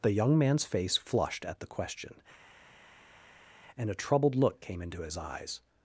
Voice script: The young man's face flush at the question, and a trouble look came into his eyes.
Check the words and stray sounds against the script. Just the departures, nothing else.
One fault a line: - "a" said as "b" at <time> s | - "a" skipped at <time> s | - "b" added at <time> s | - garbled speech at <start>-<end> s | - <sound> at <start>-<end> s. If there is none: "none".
- "flush" said as "flushed" at 1.0 s
- "trouble" said as "troubled" at 3.9 s